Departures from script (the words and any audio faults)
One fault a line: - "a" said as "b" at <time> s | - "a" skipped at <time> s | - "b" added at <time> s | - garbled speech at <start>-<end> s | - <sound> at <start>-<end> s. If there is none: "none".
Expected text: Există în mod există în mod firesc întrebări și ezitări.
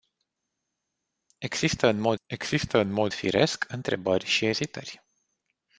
none